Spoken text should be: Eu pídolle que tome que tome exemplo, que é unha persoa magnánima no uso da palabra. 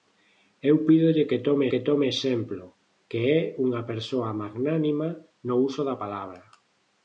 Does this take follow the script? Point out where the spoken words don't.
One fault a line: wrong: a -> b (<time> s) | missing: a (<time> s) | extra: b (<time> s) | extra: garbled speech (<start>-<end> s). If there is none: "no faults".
no faults